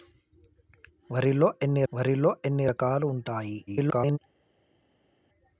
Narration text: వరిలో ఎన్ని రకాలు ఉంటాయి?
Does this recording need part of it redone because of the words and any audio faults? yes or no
yes